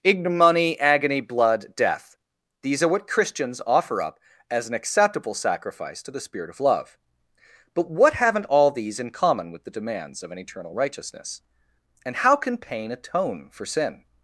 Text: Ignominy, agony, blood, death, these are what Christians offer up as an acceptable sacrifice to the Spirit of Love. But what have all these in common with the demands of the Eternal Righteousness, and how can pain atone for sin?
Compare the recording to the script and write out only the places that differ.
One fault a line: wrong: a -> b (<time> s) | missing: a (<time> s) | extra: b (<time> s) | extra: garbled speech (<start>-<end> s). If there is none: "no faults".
wrong: have -> haven't (8.1 s)
wrong: the -> an (10.3 s)